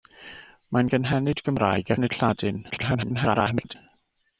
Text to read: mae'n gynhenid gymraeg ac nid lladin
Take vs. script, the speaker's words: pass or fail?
fail